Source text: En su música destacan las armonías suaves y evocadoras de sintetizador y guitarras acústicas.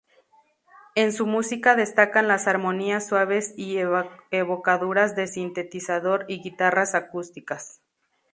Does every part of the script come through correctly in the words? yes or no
yes